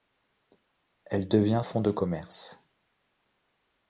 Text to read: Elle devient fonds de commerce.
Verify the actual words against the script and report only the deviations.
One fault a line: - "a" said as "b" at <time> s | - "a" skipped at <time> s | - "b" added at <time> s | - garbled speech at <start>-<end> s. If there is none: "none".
none